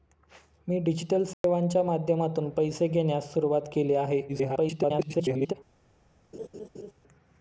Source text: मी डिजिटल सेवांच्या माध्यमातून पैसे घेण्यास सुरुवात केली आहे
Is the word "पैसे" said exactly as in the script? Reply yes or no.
yes